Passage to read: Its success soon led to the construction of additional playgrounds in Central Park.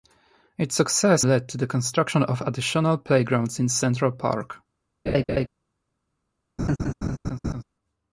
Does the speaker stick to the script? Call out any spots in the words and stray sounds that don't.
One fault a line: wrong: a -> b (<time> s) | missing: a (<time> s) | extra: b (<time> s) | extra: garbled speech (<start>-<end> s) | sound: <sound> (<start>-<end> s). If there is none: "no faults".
missing: soon (1.2 s)
sound: laugh (5.1-5.5 s)
sound: laugh (6.6-7.6 s)